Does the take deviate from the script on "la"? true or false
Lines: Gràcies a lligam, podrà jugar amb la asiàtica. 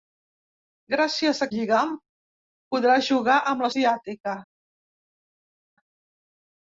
false